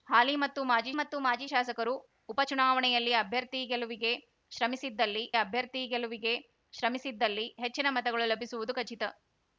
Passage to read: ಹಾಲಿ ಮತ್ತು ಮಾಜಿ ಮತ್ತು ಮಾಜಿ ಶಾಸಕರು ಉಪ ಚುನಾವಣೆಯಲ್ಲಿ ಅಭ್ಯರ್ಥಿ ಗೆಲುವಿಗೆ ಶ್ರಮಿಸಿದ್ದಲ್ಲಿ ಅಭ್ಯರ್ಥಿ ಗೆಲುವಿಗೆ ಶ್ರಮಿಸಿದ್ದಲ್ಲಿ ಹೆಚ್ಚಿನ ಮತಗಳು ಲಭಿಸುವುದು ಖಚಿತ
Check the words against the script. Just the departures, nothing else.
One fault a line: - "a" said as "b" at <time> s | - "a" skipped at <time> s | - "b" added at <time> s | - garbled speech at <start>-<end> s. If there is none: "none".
none